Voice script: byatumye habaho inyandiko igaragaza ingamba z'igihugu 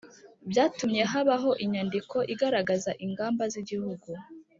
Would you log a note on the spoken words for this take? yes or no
no